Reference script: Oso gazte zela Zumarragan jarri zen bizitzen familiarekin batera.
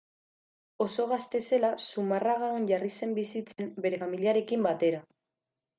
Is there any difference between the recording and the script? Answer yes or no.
yes